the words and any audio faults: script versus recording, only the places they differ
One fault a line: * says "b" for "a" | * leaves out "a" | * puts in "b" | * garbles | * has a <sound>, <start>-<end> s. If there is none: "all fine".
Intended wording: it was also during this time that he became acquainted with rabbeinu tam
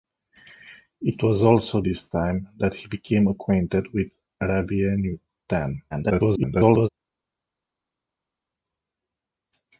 * leaves out "during"
* garbles